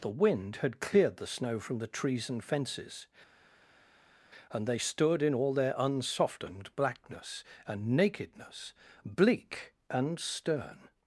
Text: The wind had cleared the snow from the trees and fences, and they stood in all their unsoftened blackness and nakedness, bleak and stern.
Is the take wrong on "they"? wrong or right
right